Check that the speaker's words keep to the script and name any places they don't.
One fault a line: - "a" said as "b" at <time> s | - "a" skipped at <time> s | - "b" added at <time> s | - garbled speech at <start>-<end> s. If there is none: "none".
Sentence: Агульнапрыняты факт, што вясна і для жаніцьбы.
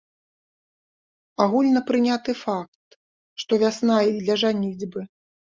none